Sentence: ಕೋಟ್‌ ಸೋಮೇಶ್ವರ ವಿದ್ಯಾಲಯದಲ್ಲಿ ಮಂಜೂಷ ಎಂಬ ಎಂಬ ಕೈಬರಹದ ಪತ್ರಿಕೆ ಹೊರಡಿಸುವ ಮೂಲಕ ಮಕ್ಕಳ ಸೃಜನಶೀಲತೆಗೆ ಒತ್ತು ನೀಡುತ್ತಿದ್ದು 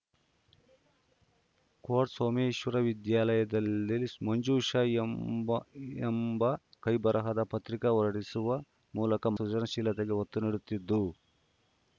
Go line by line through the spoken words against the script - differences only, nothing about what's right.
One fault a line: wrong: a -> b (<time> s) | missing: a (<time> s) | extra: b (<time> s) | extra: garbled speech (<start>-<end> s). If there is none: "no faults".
missing: ಮಕ್ಕಳ (9.3 s)